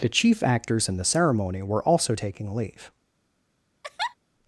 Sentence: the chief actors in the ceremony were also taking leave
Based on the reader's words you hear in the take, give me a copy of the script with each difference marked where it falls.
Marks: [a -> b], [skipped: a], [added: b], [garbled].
the chief actors in the ceremony were also taking leave